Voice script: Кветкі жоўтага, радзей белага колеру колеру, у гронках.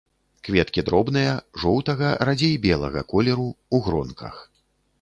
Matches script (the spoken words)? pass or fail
fail